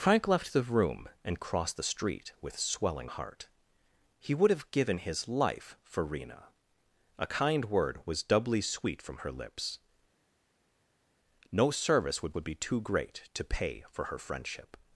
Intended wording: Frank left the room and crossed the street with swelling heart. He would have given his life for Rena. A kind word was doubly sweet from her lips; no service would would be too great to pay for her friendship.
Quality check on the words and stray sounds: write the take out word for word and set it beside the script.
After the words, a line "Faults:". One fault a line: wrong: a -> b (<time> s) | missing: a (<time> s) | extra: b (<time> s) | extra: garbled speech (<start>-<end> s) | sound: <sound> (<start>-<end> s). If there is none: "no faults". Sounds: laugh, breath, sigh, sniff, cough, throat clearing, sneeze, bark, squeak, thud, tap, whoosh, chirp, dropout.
Frank left the room and crossed the street with swelling heart. He would have given his life for Rena. A kind word was doubly sweet from her lips; no service would would be too great to pay for her friendship.
Faults:
no faults